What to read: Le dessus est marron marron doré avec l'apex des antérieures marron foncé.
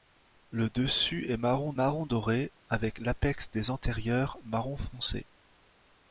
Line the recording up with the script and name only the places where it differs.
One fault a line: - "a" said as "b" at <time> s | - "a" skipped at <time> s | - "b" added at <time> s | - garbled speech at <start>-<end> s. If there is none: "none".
none